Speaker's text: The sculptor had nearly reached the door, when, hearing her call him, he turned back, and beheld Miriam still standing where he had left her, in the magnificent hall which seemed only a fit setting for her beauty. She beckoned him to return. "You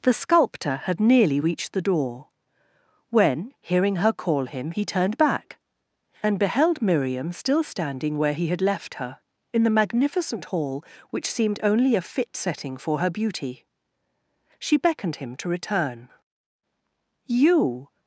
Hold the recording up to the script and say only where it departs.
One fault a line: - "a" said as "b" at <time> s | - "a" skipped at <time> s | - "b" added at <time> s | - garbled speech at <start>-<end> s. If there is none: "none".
none